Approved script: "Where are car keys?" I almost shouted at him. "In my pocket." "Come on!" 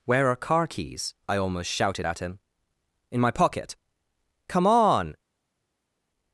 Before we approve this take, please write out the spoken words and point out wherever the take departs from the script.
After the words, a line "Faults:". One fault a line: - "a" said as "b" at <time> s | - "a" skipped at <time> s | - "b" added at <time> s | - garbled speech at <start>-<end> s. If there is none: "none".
"Where are car keys?" I almost shouted at him. "In my pocket." "Come on!"
Faults:
none